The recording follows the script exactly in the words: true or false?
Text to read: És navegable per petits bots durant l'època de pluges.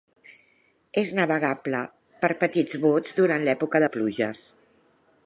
true